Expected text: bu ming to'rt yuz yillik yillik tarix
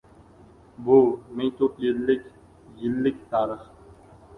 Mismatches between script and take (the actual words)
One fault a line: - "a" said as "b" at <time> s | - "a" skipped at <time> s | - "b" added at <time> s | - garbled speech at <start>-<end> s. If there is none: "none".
- "yuz" skipped at 1.8 s